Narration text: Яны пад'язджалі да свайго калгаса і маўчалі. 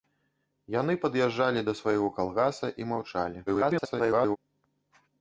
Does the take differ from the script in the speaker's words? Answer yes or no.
yes